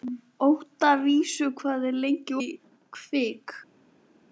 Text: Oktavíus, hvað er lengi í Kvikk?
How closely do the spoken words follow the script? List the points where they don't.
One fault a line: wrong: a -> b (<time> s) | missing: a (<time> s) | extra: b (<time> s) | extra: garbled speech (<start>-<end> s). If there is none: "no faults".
no faults